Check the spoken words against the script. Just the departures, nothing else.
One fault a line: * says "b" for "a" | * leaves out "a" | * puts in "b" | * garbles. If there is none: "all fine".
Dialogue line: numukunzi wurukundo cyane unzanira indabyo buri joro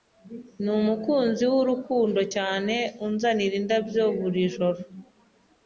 all fine